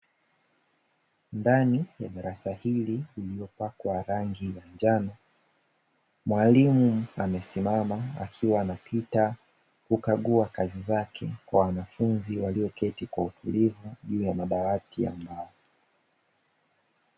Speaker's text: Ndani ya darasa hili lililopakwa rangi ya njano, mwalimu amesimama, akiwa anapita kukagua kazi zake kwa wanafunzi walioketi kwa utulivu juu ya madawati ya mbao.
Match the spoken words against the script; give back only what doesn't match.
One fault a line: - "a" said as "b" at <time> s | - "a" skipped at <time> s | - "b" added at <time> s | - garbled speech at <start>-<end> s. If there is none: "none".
none